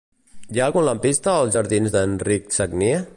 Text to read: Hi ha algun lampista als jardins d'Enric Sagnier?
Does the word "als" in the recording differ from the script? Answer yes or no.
no